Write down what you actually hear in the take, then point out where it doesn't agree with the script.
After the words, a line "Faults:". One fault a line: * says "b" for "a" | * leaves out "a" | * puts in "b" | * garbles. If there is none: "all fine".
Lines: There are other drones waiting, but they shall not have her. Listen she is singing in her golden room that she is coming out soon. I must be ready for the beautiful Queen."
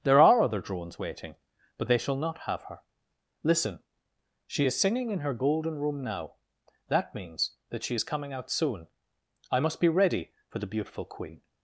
There are other drones waiting, but they shall not have her. Listen she is singing in her golden room now. That means that she is coming out soon. I must be ready for the beautiful Queen."
Faults:
* puts in "now That means"